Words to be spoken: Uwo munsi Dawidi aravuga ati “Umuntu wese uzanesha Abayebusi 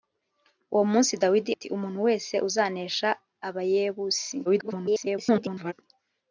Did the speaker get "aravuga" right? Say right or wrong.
wrong